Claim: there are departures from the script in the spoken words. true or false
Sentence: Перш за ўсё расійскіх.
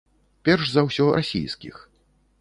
false